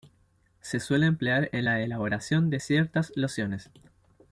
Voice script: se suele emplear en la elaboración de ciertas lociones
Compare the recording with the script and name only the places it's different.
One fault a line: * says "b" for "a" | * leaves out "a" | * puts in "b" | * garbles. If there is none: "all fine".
all fine